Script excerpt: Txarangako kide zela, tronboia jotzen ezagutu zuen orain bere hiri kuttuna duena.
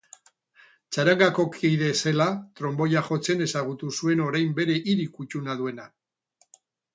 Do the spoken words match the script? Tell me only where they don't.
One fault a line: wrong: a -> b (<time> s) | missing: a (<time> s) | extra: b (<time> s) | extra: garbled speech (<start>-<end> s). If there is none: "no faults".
no faults